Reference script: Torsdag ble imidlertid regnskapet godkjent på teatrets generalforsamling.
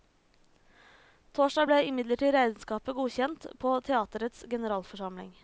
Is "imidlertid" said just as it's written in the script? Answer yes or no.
yes